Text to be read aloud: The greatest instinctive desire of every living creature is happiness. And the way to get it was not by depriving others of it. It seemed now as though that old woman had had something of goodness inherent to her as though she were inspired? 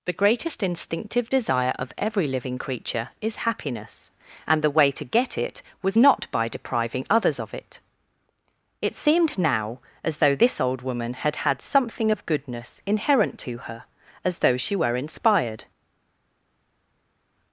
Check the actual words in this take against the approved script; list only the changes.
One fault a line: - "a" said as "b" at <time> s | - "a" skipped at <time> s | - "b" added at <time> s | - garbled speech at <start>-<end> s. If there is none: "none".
- "that" said as "this" at 10.3 s